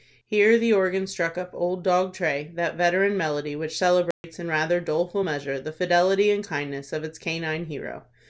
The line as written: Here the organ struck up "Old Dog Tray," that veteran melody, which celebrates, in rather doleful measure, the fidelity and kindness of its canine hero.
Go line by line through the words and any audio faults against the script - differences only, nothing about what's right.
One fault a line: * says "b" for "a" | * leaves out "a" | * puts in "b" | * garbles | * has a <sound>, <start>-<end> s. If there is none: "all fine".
* has a dropout, 4.1-4.2 s